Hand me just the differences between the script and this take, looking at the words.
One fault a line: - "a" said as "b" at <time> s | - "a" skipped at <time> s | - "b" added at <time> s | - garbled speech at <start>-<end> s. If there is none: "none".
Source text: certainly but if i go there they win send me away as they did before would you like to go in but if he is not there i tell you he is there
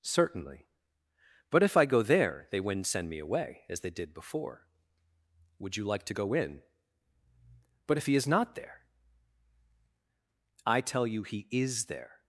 - "win" said as "wouldn't" at 2.6 s